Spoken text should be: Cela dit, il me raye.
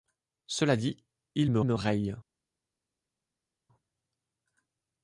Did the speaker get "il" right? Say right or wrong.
right